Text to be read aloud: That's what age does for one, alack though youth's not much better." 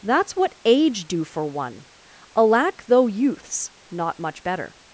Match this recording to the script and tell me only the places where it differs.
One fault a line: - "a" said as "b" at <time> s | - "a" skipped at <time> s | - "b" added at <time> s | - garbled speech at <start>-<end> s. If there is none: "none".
- "does" said as "do" at 1.1 s